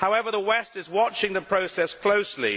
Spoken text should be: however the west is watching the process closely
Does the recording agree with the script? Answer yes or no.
yes